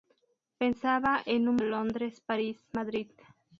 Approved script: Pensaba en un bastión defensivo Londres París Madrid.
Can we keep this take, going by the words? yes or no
no